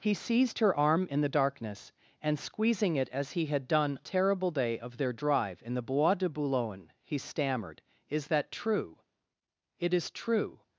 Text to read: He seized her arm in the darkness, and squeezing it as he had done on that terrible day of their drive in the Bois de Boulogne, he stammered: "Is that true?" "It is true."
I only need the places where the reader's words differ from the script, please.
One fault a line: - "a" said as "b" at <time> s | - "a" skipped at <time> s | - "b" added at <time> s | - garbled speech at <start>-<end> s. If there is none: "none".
- "on that" skipped at 4.0 s